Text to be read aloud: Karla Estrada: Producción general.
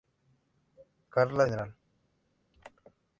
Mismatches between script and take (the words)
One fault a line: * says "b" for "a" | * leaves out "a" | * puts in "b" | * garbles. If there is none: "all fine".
* leaves out "Estrada Producción"